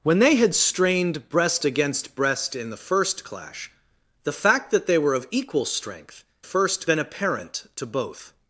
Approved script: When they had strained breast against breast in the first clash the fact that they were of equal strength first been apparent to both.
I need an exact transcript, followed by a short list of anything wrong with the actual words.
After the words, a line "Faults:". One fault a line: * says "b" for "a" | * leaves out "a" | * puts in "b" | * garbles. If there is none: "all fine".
When they had strained breast against breast in the first clash the fact that they were of equal strength first been apparent to both.
Faults:
all fine